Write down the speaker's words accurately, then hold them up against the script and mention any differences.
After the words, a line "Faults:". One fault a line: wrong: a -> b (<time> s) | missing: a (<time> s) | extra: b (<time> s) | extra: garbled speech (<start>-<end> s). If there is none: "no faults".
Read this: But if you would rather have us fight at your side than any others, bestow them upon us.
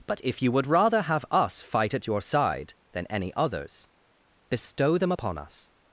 But if you would rather have us fight at your side than any others, bestow them upon us.
Faults:
no faults